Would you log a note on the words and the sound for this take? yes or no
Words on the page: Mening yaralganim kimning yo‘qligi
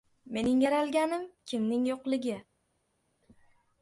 no